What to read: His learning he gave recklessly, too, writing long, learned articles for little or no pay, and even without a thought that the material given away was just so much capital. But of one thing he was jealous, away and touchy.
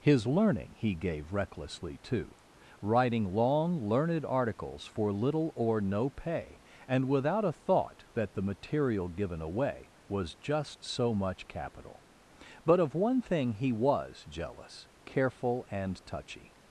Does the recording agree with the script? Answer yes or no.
no